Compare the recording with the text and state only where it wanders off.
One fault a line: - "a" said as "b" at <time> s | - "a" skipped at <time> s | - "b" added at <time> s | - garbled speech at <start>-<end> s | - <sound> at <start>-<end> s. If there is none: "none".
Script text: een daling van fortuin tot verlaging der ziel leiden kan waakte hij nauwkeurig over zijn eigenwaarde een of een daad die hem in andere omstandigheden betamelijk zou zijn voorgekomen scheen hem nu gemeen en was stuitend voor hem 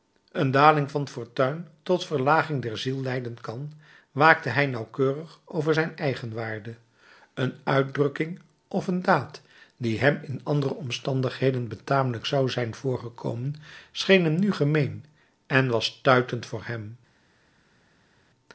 - "uitdrukking" added at 7.6 s